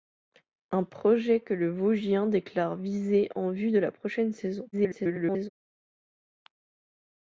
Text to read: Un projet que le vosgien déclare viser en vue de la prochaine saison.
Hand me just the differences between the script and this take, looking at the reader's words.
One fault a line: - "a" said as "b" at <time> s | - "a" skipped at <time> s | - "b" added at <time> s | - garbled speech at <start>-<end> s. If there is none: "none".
- garbled speech at 4.7-5.5 s